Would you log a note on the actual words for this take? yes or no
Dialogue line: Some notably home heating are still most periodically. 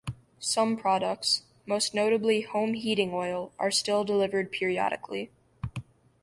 yes